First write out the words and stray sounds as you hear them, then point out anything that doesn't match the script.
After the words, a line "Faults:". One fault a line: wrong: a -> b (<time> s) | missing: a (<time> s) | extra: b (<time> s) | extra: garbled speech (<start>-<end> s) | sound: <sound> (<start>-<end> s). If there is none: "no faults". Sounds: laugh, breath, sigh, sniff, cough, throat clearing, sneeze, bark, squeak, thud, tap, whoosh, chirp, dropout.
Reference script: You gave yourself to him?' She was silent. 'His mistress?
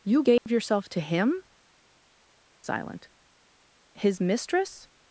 You gave yourself to him?' Silent. 'His mistress?
Faults:
sound: dropout (0.4-0.5 s)
missing: She was (1.4 s)